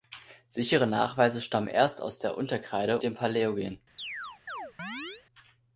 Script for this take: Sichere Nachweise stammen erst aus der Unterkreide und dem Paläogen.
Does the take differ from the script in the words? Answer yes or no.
yes